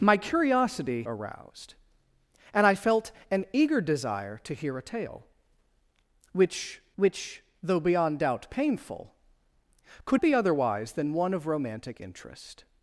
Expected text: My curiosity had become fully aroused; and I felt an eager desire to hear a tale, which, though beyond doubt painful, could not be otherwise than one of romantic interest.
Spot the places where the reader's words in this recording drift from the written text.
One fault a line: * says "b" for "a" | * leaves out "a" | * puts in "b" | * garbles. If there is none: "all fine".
* leaves out "had become fully"
* puts in "which"
* leaves out "not"